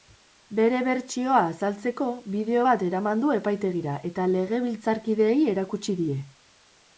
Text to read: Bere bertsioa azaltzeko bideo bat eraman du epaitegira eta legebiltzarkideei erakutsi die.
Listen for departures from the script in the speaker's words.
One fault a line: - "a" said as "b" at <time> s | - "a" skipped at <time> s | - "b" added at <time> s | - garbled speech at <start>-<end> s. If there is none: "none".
none